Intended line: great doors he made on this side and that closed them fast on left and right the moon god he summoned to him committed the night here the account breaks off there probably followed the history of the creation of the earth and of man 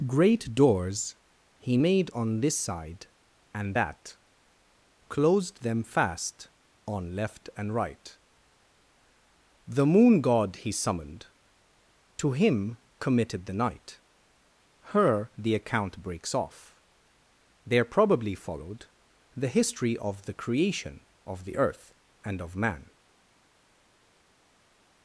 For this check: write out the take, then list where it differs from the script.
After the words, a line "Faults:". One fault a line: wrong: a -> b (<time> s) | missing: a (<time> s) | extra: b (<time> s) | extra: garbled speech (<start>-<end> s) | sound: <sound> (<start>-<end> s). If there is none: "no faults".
great doors he made on this side and that closed them fast on left and right the moon god he summoned to him committed the night her the account breaks off there probably followed the history of the creation of the earth and of man
Faults:
wrong: here -> her (14.9 s)